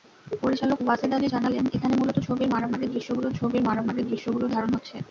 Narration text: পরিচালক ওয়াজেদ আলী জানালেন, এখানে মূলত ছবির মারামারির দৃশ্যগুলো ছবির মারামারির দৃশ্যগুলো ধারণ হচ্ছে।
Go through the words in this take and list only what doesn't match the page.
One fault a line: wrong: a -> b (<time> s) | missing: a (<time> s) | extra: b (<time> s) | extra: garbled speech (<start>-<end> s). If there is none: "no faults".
no faults